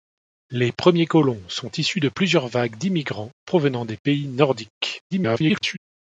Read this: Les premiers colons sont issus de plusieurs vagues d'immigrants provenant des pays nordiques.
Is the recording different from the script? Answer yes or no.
yes